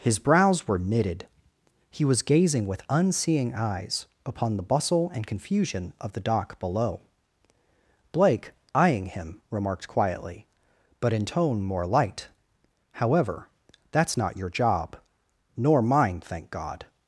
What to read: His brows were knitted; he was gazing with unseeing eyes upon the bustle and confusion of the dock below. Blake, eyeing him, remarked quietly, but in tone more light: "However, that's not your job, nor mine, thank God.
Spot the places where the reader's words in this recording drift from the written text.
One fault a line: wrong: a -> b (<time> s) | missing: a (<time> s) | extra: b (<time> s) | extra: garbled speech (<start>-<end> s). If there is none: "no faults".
no faults